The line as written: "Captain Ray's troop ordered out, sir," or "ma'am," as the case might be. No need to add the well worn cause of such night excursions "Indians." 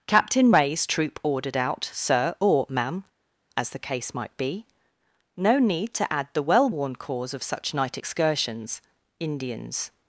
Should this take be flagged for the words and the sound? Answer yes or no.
no